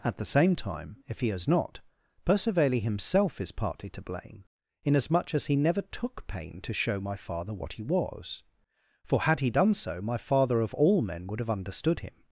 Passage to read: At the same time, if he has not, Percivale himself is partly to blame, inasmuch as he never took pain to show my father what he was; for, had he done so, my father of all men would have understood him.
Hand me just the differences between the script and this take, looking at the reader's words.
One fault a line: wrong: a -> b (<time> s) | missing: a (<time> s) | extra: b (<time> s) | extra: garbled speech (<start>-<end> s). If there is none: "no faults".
no faults